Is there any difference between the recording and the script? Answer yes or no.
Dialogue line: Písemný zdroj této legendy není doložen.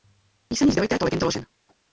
yes